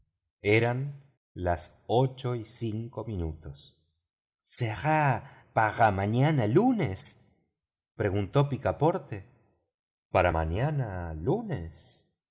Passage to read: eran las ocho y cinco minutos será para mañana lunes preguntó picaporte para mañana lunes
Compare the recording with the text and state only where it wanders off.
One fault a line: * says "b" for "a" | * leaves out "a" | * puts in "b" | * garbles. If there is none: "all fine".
all fine